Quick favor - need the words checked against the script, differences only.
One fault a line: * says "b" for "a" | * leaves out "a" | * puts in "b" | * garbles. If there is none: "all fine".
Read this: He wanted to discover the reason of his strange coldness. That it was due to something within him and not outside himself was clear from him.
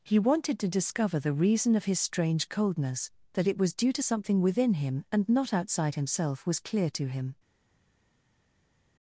* says "to" for "from"